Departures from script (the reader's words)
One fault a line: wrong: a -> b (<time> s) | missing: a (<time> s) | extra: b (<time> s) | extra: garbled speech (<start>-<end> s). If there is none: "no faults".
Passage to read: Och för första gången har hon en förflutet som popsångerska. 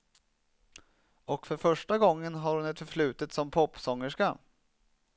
wrong: en -> ett (2.6 s)